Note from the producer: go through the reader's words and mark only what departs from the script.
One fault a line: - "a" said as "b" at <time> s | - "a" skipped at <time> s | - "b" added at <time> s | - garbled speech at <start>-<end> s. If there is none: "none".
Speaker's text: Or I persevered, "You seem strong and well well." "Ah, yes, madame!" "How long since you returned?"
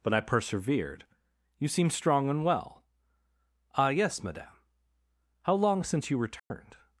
- "Or" said as "But" at 0.0 s
- "well" skipped at 2.9 s